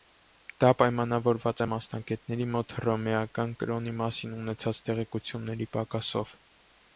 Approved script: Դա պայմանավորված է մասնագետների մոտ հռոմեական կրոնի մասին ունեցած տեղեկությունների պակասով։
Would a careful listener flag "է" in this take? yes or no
no